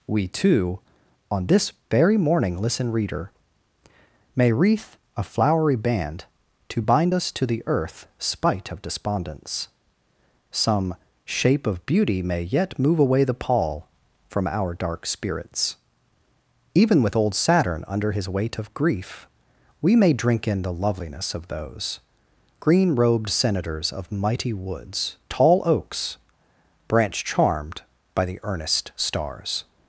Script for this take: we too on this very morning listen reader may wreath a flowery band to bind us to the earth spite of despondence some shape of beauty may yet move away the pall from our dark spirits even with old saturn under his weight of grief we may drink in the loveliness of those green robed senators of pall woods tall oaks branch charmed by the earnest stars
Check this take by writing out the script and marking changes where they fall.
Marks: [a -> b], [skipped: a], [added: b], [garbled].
we too on this very morning listen reader may wreath a flowery band to bind us to the earth spite of despondence some shape of beauty may yet move away the pall from our dark spirits even with old saturn under his weight of grief we may drink in the loveliness of those green robed senators of [pall -> mighty] woods tall oaks branch charmed by the earnest stars